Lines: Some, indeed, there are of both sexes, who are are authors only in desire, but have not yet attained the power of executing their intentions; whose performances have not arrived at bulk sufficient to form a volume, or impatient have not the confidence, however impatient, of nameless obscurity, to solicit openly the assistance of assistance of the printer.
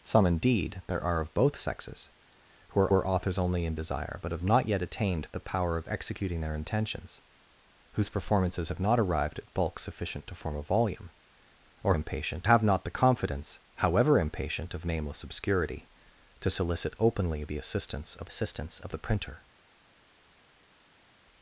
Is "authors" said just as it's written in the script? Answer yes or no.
yes